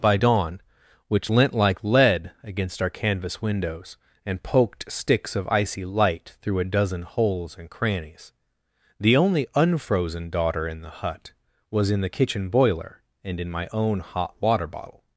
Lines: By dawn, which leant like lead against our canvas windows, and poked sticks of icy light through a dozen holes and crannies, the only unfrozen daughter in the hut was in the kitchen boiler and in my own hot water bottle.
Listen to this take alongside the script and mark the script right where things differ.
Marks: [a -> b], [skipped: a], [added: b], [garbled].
By dawn, which leant like lead against our canvas windows, and poked sticks of icy light through a dozen holes and crannies, the only unfrozen daughter in the hut was in the kitchen boiler and in my own hot water bottle.